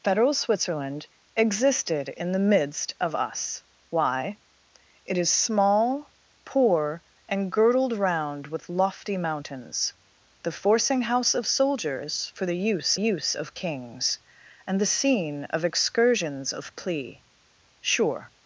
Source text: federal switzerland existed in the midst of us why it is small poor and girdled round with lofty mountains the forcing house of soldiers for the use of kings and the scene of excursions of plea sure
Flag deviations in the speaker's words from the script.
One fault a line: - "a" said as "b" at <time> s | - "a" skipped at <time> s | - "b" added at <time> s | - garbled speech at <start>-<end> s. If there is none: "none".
- "use" added at 13.0 s